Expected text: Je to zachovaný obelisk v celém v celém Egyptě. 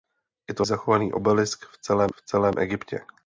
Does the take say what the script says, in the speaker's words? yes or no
yes